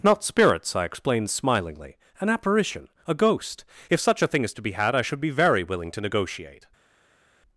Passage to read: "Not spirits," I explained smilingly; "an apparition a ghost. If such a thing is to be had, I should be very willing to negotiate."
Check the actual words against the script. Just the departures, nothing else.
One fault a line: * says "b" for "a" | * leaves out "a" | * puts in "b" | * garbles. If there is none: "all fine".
all fine